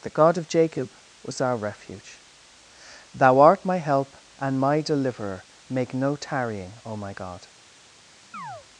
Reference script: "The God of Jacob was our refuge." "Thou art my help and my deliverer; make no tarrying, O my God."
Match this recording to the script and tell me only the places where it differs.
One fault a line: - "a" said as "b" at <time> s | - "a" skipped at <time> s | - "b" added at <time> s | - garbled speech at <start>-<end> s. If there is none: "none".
none